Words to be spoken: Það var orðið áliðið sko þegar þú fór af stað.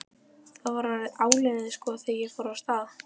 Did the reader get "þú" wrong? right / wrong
wrong